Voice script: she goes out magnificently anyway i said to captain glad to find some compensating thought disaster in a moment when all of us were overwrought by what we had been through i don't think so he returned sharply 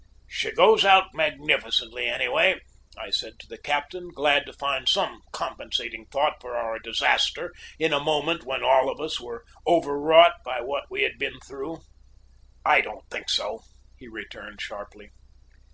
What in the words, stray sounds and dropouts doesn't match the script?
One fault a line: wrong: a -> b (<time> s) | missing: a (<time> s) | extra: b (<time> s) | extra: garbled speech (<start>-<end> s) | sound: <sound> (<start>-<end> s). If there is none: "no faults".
extra: the (3.5 s)
extra: for our (6.4 s)